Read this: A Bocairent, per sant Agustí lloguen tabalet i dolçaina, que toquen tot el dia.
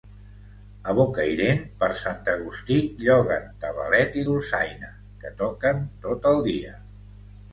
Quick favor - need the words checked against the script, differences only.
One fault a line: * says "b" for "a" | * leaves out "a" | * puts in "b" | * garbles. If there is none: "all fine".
all fine